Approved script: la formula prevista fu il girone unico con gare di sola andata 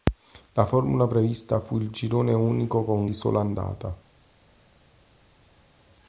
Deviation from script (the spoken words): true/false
true